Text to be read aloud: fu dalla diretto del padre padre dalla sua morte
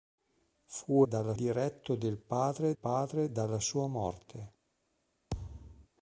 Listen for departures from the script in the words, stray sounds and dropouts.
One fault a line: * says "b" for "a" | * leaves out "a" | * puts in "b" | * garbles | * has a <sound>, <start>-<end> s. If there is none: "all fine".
* has a thud, 5.3-5.9 s